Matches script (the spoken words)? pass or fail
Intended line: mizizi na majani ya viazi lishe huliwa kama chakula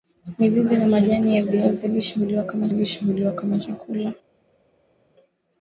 fail